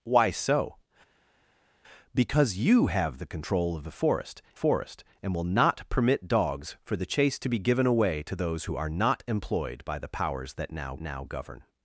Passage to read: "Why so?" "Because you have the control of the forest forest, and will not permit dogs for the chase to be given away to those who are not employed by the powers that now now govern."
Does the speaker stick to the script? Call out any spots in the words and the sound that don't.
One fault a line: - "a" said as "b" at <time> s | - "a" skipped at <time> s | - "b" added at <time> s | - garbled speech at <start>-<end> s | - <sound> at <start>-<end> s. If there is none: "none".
none